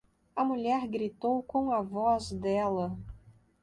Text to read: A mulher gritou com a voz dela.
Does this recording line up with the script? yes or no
yes